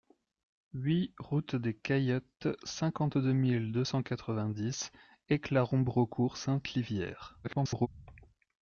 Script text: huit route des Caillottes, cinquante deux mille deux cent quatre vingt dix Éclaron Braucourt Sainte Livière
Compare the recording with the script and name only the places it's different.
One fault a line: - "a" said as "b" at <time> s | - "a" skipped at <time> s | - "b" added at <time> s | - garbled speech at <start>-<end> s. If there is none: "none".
- garbled speech at 7.4-7.9 s